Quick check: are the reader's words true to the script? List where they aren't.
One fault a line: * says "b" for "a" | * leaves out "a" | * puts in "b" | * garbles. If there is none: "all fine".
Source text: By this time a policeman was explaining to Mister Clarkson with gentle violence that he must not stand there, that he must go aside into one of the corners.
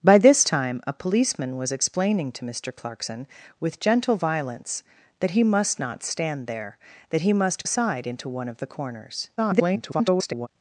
* leaves out "go"
* garbles